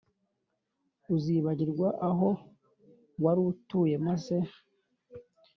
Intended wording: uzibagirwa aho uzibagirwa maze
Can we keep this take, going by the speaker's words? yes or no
no